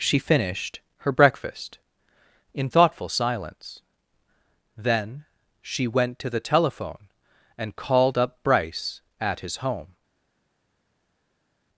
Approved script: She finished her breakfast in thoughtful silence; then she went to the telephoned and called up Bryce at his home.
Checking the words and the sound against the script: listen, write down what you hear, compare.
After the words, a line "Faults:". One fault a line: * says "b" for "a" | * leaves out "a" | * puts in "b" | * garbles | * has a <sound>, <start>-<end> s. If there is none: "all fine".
She finished her breakfast in thoughtful silence; then she went to the telephone and called up Bryce at his home.
Faults:
* says "telephone" for "telephoned"